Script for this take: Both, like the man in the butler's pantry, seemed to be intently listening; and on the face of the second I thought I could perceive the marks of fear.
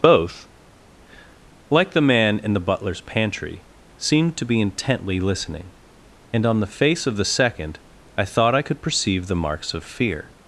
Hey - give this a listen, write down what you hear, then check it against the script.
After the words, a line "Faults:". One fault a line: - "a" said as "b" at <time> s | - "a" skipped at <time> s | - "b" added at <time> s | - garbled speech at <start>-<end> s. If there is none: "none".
Both, like the man in the butler's pantry, seemed to be intently listening; and on the face of the second I thought I could perceive the marks of fear.
Faults:
none